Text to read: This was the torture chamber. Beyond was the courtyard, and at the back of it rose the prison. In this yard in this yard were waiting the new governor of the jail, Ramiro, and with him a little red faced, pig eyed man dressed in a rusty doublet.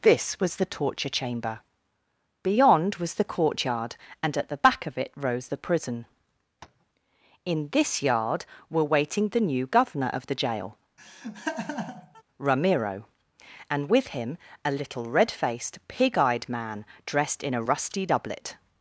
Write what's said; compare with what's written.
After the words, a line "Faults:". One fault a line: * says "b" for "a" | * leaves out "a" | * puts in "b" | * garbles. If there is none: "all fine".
This was the torture chamber. Beyond was the courtyard, and at the back of it rose the prison. In this yard were waiting the new governor of the jail, Ramiro, and with him a little red faced, pig eyed man dressed in a rusty doublet.
Faults:
* leaves out "in this yard"